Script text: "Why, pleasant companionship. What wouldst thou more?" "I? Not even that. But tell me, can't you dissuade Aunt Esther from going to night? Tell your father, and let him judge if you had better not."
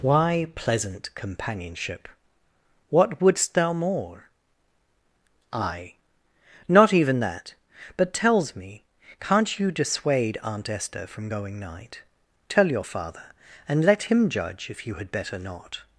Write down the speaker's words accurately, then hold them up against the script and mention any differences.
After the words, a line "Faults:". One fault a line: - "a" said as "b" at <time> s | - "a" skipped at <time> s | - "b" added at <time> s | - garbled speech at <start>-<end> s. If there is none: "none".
"Why, pleasant companionship. What wouldst thou more?" "I? Not even that. But tells me, can't you dissuade Aunt Esther from going night? Tell your father, and let him judge if you had better not."
Faults:
- "tell" said as "tells" at 8.1 s
- "to" skipped at 11.6 s